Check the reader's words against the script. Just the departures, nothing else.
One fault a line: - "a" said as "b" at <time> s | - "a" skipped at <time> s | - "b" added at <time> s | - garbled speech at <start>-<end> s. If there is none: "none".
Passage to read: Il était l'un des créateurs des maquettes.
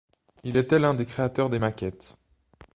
none